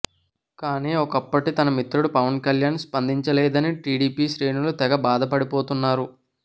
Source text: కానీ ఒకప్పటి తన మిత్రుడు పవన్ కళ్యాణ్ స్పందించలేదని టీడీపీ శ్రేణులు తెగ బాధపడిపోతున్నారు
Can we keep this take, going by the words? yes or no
yes